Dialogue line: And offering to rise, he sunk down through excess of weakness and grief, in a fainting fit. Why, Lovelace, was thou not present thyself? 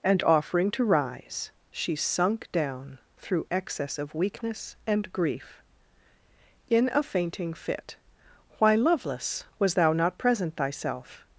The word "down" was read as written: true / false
true